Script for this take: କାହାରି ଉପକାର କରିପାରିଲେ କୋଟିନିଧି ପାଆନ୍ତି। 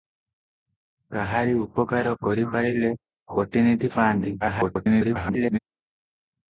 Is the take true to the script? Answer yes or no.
no